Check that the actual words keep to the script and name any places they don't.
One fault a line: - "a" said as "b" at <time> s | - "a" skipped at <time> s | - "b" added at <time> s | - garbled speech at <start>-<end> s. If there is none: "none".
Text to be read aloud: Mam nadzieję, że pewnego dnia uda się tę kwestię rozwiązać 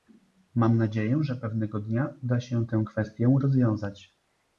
none